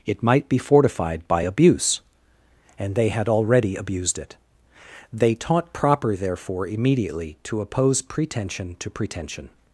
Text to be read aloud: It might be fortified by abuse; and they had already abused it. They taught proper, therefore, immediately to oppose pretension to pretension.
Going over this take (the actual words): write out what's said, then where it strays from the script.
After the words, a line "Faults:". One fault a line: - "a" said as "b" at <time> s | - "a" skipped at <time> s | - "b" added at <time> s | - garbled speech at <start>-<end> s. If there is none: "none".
It might be fortified by abuse; and they had already abused it. They taught proper, therefore, immediately to oppose pretension to pretension.
Faults:
none